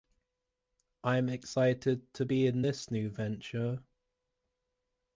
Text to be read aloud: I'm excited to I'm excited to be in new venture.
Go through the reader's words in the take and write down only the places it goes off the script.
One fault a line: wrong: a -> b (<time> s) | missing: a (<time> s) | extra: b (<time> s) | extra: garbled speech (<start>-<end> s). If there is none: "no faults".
missing: I'm excited to (2.2 s)
extra: this (2.6 s)